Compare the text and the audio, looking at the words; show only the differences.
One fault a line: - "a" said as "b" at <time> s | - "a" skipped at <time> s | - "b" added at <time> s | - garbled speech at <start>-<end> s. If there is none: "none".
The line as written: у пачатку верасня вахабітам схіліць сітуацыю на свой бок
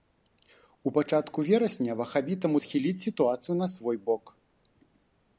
none